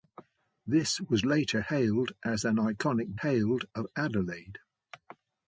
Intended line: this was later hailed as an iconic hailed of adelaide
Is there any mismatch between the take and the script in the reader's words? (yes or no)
no